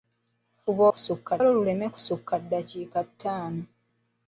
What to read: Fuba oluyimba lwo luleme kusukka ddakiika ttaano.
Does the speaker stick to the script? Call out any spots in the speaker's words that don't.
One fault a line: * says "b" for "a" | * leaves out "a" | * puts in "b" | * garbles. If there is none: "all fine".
* says "kusukka" for "oluyimba"